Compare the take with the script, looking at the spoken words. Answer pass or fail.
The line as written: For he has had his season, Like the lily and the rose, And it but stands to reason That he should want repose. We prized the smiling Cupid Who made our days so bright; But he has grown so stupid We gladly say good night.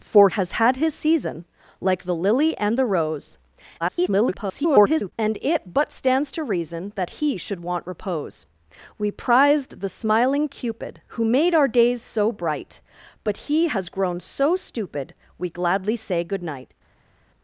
fail